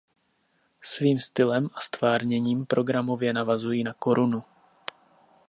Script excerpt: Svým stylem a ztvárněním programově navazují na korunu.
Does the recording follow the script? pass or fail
pass